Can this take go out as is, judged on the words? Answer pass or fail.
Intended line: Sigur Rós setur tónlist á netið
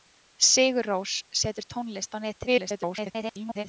fail